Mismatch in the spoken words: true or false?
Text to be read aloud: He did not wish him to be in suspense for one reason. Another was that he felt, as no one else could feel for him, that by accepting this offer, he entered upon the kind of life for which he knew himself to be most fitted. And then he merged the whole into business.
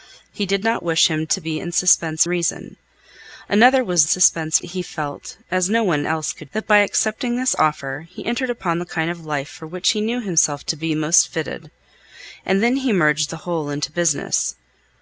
true